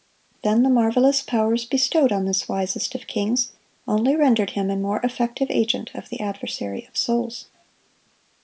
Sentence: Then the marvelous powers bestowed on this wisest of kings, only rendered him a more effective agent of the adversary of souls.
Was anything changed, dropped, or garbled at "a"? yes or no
no